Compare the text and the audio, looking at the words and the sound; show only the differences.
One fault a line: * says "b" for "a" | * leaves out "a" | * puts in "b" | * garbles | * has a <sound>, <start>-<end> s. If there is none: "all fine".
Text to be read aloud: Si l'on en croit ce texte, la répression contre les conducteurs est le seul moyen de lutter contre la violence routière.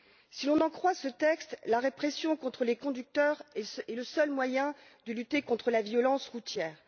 all fine